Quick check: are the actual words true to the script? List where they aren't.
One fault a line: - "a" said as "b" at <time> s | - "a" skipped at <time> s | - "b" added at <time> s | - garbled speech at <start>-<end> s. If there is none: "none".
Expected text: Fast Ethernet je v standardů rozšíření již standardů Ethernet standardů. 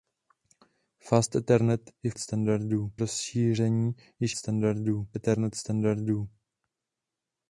none